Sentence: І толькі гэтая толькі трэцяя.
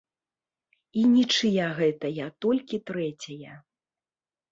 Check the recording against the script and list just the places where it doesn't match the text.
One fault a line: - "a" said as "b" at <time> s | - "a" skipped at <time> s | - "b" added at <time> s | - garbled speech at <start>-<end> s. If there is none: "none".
- "толькі" said as "нічыя" at 1.2 s